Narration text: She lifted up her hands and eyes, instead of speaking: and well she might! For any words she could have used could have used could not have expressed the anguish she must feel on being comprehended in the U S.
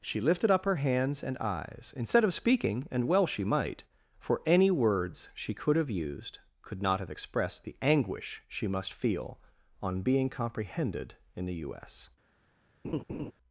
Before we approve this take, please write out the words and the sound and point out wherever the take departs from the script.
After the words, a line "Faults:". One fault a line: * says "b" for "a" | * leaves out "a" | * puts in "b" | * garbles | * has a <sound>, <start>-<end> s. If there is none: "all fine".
She lifted up her hands and eyes, instead of speaking: and well she might! For any words she could have used could not have expressed the anguish she must feel on being comprehended in the U S.
Faults:
* leaves out "have used could"
* has a laugh, 12.8-13.3 s